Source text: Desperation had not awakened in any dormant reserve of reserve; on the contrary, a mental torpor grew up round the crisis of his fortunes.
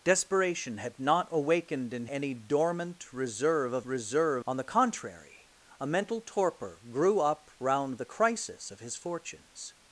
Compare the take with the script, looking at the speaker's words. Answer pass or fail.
pass